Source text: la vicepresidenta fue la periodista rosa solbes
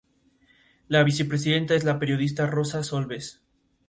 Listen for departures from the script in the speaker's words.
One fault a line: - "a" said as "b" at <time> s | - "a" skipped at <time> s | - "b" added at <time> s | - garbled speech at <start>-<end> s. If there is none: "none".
- "fue" said as "es" at 1.7 s